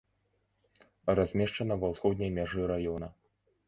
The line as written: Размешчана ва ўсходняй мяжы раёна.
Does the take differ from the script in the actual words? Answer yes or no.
no